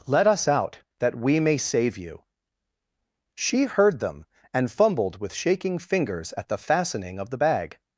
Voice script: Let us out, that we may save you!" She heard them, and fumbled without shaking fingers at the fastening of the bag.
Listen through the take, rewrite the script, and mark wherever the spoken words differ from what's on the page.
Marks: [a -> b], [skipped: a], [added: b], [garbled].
Let us out, that we may save you!" She heard them, and fumbled [without -> with] shaking fingers at the fastening of the bag.